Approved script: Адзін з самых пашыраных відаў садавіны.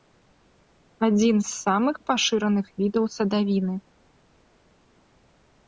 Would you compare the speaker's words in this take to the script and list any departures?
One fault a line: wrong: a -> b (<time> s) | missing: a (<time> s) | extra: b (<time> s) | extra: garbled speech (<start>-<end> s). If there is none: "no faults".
no faults